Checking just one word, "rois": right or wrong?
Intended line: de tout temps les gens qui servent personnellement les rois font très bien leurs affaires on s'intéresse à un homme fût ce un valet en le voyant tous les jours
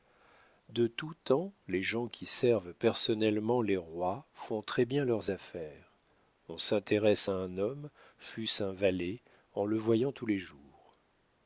right